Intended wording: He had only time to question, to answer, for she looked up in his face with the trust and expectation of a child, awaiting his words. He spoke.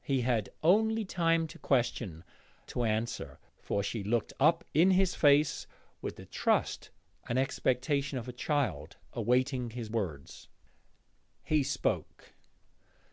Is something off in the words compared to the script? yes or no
no